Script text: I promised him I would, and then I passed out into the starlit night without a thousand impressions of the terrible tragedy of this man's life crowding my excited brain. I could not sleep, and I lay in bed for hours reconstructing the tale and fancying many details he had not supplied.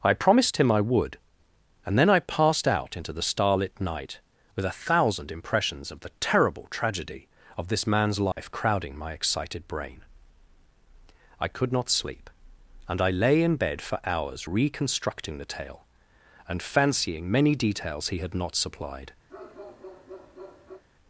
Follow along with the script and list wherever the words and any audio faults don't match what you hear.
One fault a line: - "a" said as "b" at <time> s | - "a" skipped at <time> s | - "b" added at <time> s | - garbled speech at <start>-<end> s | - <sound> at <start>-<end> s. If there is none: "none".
- "without" said as "with" at 4.5 s
- dropout at 8.3-8.4 s
- bark at 19.3-20.8 s